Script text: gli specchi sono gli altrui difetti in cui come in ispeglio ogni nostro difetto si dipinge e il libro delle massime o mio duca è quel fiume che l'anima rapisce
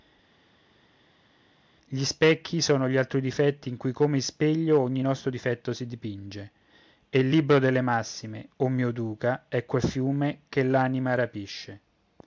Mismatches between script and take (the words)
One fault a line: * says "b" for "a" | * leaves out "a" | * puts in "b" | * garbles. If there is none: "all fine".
all fine